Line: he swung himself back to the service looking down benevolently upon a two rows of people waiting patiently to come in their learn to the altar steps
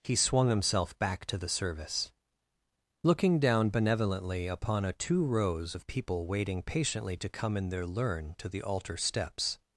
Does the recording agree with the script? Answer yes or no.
yes